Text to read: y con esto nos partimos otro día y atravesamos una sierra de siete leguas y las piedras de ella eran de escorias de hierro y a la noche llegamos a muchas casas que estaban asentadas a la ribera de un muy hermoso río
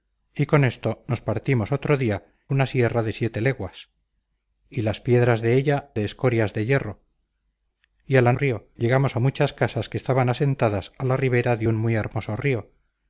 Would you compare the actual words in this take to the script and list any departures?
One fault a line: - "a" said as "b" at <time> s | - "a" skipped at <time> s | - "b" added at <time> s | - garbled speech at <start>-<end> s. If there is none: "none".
- "y atravesamos" skipped at 2.2 s
- "eran" skipped at 5.9 s
- "noche" said as "río" at 8.3 s